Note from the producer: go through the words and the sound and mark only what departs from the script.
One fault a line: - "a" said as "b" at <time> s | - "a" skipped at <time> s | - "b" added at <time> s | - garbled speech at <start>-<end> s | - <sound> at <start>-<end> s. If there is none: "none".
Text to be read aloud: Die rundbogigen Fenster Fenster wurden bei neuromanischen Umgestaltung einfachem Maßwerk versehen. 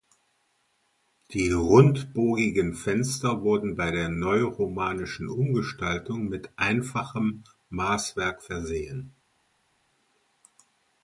- "Fenster" skipped at 3.4 s
- "der" added at 3.9 s
- "mit" added at 6.3 s